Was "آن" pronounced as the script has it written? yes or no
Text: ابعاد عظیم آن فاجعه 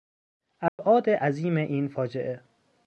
no